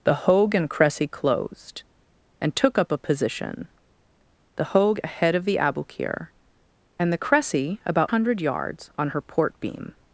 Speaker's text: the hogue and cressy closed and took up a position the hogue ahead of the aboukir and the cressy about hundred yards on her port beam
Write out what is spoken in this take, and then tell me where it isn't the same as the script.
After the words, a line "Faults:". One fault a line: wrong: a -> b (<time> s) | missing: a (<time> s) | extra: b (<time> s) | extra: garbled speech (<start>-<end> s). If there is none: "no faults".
the hogue and cressy closed and took up a position the hogue ahead of the aboukir and the cressy about hundred yards on her port beam
Faults:
no faults